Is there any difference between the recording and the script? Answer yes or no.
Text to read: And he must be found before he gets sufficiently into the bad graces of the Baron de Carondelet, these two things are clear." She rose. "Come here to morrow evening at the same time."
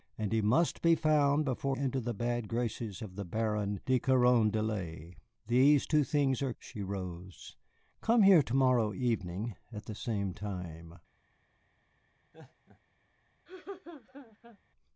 yes